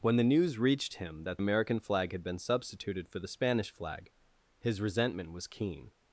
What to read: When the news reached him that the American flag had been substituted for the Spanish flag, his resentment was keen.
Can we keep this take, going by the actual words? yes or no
no